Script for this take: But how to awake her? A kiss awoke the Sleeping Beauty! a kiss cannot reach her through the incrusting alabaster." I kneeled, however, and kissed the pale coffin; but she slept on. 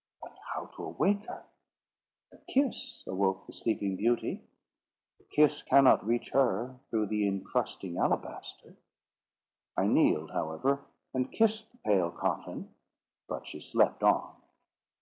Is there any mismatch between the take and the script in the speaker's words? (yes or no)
no